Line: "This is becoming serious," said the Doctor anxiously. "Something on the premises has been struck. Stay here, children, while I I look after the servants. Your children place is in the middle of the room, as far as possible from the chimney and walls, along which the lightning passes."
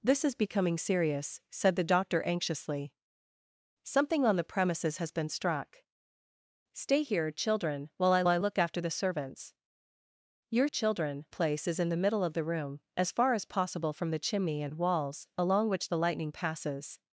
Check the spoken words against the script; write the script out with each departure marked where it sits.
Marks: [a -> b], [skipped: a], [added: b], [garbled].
"This is becoming serious," said the Doctor anxiously. "Something on the premises has been struck. Stay here, children, while I I look after the servants. Your children place is in the middle of the room, as far as possible from the chimney and walls, along which the lightning passes."